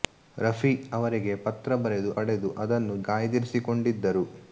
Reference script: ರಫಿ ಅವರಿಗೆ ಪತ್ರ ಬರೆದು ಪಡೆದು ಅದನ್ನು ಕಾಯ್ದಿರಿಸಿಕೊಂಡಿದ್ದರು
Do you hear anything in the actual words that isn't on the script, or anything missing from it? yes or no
no